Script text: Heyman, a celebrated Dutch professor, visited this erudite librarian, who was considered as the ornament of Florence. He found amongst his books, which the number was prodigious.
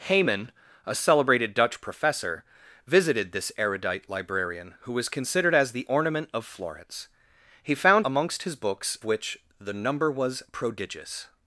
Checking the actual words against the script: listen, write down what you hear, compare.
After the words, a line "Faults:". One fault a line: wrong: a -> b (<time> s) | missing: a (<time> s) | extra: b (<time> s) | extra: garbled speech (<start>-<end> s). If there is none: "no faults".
Heyman, a celebrated Dutch professor, visited this erudite librarian, who was considered as the ornament of Florence. He found amongst his books, which the number was prodigious.
Faults:
no faults